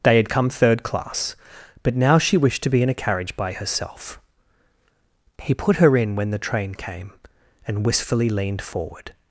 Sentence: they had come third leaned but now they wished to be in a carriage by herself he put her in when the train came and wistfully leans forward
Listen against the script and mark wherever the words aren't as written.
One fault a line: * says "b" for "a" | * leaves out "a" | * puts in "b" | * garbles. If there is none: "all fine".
* says "class" for "leaned"
* says "she" for "they"
* says "leaned" for "leans"